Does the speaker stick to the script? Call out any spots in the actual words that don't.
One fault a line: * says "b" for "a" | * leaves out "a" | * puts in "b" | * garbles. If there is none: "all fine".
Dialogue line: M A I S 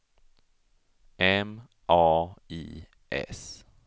all fine